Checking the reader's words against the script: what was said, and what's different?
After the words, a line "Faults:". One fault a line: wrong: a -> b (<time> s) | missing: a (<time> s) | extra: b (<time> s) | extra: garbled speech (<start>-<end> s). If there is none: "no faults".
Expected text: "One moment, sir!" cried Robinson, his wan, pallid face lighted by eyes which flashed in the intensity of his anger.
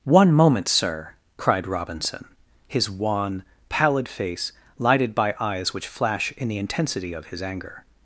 "One moment, sir!" cried Robinson, his wan, pallid face lighted by eyes which flash in the intensity of his anger.
Faults:
wrong: flashed -> flash (5.9 s)